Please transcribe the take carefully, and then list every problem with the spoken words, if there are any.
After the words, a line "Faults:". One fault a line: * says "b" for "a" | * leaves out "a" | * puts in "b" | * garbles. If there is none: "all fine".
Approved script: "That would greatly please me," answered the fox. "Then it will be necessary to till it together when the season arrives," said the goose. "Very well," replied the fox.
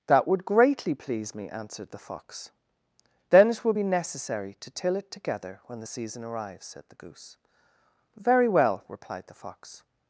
"That would greatly please me," answered the fox. "Then it will be necessary to till it together when the season arrives," said the goose. "Very well," replied the fox.
Faults:
all fine